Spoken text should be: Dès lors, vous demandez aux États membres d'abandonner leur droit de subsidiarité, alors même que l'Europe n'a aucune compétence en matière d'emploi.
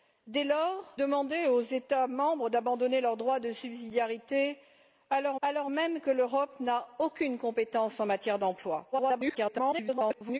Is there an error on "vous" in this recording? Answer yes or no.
yes